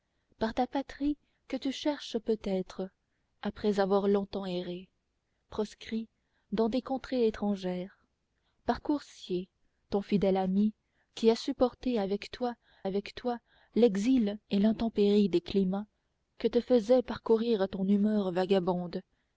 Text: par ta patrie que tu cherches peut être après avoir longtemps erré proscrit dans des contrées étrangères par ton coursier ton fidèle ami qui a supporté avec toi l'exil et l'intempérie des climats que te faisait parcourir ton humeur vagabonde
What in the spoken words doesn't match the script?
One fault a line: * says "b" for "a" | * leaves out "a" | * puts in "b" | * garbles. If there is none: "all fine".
* leaves out "ton"
* puts in "avec toi"